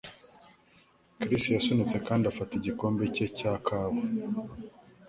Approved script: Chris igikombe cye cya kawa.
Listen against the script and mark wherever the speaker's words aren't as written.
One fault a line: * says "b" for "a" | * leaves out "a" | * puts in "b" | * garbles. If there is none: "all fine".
* puts in "yasunitse kandi afata"